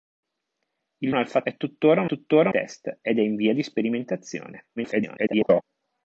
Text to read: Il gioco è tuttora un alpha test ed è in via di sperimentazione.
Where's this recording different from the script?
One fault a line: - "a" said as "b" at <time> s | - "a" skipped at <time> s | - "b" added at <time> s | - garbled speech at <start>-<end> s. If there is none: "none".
- "gioco" said as "alpha" at 1.1 s
- "alpha" said as "tuttora" at 2.0 s
- garbled speech at 4.8-5.6 s